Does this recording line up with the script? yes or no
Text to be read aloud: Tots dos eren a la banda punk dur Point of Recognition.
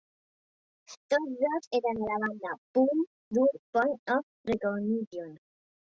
yes